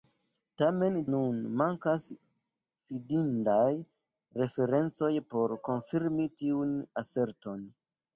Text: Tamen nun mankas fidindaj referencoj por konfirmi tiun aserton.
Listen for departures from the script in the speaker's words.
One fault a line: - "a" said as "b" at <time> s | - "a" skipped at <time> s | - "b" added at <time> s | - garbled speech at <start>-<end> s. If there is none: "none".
none